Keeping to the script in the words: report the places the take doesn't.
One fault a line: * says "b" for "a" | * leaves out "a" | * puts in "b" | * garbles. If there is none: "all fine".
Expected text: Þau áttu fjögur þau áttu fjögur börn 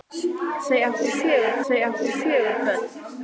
all fine